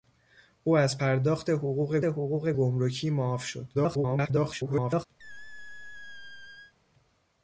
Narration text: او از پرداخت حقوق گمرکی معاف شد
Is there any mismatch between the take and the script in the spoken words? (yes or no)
yes